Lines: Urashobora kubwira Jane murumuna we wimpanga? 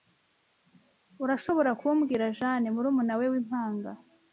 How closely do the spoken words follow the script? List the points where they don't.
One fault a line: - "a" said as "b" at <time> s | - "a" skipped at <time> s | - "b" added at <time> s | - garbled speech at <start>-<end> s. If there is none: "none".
none